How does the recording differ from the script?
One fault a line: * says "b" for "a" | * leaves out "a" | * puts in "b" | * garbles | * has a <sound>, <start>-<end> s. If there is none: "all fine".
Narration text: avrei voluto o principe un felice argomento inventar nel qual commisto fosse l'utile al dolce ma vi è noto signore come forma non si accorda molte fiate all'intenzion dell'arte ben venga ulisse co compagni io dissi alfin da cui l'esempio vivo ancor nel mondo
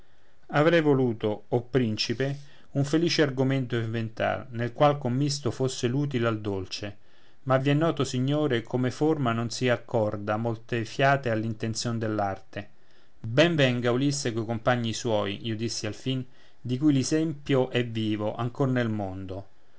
* puts in "suoi"
* says "di" for "da"
* puts in "è"